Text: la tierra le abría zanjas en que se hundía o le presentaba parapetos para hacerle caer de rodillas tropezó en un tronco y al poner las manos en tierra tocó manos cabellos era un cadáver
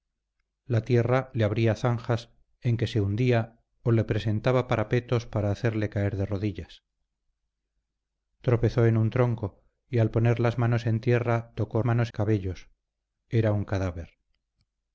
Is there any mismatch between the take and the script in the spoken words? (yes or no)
no